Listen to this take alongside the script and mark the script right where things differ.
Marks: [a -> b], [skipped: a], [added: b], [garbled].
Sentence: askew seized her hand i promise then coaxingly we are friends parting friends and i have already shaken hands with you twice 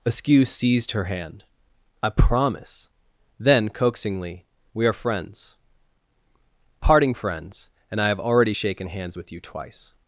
askew seized her hand i promise then coaxingly we are friends parting friends and i have already shaken hands with you twice